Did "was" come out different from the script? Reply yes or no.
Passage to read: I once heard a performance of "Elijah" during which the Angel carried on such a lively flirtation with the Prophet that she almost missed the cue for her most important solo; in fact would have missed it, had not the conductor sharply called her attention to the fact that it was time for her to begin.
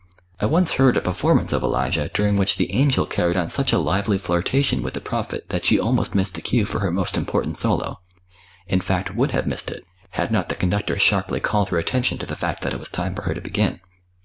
no